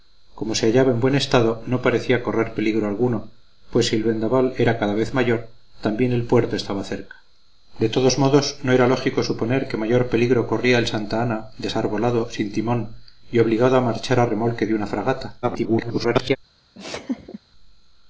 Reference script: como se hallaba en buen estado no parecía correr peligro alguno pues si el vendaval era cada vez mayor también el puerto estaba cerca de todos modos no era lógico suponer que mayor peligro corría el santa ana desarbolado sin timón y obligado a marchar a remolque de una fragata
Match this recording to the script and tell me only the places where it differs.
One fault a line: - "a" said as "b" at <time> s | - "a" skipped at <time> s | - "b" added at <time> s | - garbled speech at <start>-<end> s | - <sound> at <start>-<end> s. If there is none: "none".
- garbled speech at 15.4-16.4 s
- laugh at 16.7-17.4 s